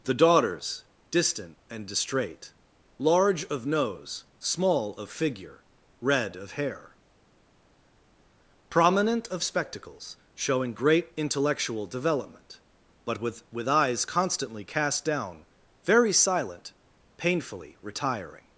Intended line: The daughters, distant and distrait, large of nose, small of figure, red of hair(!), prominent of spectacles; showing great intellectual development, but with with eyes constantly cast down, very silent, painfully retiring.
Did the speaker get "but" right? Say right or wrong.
right